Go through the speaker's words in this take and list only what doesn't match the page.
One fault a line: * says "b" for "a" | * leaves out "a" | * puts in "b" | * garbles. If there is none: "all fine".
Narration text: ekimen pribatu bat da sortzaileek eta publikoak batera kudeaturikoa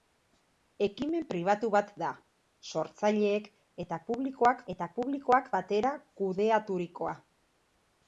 * puts in "eta publikoak"